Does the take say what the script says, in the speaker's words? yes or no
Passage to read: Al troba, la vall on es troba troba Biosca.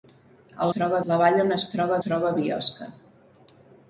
yes